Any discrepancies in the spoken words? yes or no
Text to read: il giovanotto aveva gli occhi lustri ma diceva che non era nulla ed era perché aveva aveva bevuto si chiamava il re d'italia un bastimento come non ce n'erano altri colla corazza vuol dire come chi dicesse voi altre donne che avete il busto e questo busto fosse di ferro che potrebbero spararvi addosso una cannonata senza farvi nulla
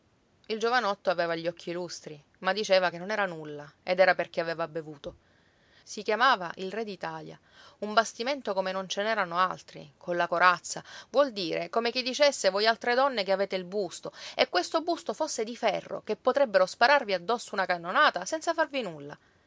yes